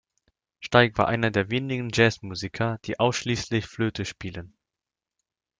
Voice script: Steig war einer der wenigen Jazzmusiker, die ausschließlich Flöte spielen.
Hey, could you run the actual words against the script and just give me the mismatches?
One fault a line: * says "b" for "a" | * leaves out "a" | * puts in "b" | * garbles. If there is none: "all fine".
all fine